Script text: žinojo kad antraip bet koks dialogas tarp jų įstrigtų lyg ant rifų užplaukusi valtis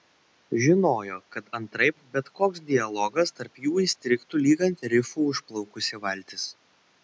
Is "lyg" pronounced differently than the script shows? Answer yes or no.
no